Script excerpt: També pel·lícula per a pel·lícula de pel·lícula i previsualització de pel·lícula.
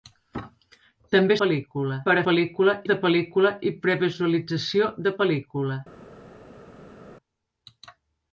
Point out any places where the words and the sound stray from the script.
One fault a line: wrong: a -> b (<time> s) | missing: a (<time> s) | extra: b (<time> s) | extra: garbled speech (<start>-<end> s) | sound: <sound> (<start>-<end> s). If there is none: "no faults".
no faults